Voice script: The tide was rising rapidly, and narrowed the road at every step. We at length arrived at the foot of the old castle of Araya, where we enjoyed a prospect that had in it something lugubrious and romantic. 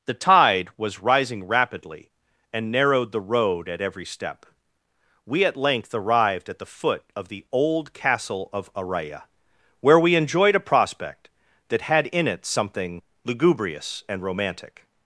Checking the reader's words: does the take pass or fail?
pass